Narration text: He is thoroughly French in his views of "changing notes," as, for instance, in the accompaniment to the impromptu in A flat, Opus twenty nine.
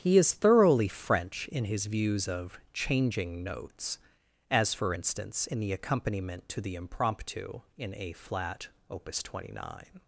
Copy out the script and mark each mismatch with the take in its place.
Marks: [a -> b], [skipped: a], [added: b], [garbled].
He is thoroughly French in his views of "changing notes," as, for instance, in the accompaniment to the impromptu in A flat, Opus twenty nine.